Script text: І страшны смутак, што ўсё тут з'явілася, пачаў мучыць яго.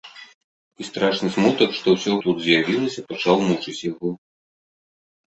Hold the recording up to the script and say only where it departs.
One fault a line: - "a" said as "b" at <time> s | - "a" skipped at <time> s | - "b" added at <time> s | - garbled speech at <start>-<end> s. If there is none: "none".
none